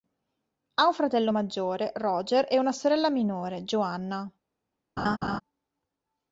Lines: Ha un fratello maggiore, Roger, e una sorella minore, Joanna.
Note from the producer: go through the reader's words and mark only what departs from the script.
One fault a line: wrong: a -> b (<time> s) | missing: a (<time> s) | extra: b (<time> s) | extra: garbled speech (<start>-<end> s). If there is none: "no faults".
no faults